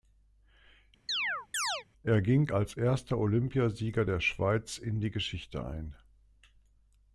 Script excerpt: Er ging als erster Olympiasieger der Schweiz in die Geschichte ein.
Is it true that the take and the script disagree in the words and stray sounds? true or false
true